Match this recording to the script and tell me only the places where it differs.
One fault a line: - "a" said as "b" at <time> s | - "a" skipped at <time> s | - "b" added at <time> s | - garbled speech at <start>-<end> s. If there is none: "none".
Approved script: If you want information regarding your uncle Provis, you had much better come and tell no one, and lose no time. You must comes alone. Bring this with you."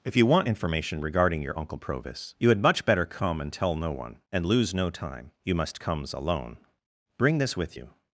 none